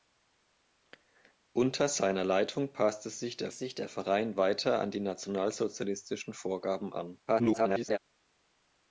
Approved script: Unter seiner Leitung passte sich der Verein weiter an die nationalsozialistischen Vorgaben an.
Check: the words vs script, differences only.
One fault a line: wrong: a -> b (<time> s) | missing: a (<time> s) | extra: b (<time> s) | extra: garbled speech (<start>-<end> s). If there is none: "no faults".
extra: sich der (3.5 s)
extra: garbled speech (7.3-8.0 s)